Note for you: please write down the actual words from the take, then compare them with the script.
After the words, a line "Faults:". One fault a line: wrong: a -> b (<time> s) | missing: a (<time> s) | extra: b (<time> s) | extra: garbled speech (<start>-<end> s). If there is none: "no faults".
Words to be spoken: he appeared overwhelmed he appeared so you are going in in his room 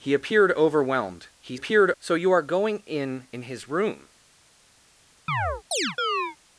he appeared overwhelmed he appeared so you are going in in his room
Faults:
no faults